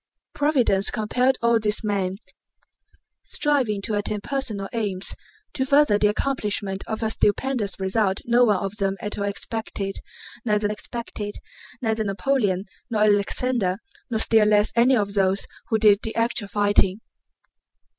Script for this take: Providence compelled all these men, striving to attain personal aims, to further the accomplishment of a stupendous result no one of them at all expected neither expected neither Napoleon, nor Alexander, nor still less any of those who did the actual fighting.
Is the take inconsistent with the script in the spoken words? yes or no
no